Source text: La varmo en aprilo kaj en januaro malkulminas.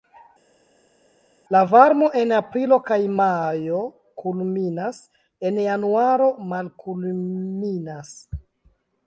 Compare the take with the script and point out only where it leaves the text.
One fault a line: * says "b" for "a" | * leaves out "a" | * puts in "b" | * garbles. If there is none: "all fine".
* puts in "majo kulminas"